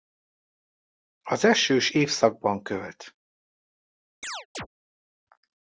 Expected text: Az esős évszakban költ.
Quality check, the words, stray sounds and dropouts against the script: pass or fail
fail